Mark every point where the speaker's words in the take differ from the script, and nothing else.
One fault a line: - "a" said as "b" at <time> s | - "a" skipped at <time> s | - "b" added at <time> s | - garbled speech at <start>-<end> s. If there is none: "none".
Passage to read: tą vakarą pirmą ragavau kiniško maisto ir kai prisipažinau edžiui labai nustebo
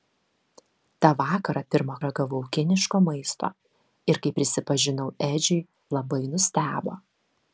none